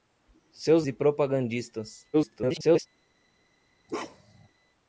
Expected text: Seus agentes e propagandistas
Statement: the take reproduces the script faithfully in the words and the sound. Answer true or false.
false